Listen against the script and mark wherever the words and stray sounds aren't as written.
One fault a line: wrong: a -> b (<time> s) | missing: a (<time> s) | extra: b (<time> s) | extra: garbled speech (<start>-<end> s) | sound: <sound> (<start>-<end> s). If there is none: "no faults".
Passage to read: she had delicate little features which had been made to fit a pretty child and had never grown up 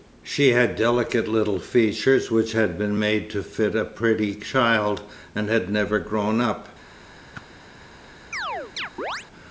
sound: whoosh (7.3-7.5 s)
sound: chirp (8.3-9.3 s)